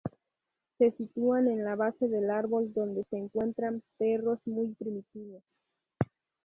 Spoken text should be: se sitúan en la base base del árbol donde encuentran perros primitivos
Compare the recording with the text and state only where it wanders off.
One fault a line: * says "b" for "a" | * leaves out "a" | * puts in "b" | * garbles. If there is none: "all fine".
* leaves out "base"
* puts in "se"
* puts in "muy"